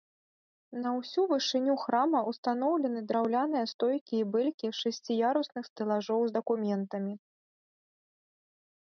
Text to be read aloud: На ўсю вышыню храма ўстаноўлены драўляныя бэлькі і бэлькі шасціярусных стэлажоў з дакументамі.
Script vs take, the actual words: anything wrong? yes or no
yes